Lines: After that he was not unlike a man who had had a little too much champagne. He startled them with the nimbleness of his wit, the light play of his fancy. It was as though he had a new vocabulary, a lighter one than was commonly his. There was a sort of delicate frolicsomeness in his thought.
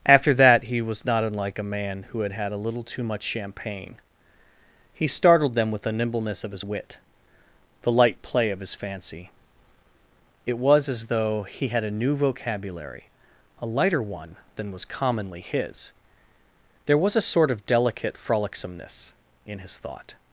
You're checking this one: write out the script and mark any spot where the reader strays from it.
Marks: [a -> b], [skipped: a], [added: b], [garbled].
After that he was not unlike a man who had had a little too much champagne. He startled them with the nimbleness of his wit, the light play of his fancy. It was as though he had a new vocabulary, a lighter one than was commonly his. There was a sort of delicate frolicsomeness in his thought.